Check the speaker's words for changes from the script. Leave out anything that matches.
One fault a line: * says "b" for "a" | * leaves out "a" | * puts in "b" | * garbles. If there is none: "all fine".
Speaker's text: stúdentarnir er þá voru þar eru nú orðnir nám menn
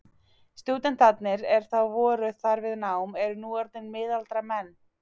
* puts in "við nám"
* says "miðaldra" for "nám"